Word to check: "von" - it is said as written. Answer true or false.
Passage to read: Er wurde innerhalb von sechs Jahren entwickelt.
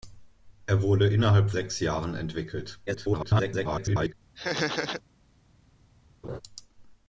false